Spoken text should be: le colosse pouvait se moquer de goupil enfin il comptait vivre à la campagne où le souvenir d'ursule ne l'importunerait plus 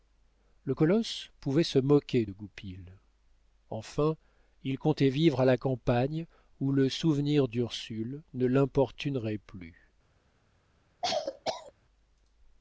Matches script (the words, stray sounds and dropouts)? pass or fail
fail